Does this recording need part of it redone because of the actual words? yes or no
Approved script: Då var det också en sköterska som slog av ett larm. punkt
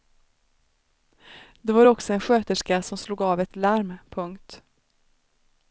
no